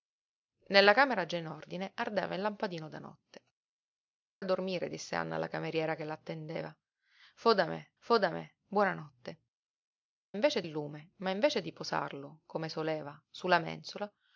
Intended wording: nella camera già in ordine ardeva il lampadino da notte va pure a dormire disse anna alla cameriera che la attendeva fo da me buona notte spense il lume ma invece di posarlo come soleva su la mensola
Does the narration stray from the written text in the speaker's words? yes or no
yes